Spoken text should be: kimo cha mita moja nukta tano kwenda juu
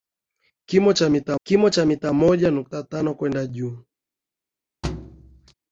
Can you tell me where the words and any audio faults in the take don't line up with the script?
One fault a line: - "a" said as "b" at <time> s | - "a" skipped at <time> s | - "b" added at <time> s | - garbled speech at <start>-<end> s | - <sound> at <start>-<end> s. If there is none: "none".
- "kimo cha mita" added at 1.4 s
- thud at 4.8-5.5 s